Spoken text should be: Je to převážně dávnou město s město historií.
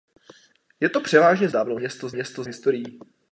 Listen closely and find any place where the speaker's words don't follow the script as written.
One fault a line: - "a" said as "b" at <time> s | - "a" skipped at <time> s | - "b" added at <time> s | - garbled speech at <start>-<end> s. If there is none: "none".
none